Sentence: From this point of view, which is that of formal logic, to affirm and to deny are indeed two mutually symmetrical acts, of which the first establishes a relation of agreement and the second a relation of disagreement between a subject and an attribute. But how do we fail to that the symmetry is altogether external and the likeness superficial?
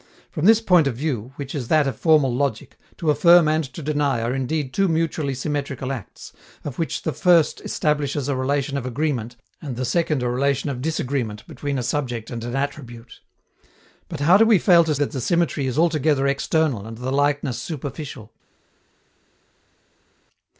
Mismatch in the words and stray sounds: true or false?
false